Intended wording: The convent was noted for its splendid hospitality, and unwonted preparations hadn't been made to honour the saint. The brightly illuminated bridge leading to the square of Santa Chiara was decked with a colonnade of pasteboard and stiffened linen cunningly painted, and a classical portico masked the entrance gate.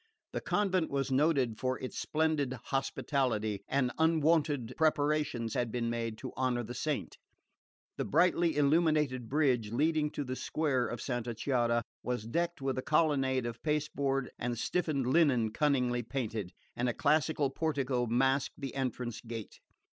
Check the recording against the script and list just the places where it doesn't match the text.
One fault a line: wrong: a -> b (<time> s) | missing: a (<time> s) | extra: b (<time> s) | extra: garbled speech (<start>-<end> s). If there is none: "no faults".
wrong: hadn't -> had (5.5 s)